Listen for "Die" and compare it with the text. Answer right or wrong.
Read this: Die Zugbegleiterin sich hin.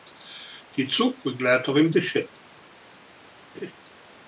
right